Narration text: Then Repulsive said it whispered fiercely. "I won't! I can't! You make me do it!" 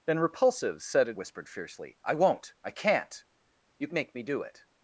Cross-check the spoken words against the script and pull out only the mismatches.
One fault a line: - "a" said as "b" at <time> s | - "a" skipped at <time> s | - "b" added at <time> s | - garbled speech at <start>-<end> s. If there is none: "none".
none